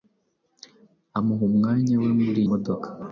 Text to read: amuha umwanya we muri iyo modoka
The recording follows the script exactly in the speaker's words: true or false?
false